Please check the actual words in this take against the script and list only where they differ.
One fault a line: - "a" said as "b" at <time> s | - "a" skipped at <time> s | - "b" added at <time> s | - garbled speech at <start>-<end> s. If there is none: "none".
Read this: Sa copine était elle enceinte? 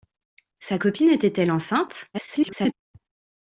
- garbled speech at 2.1-2.7 s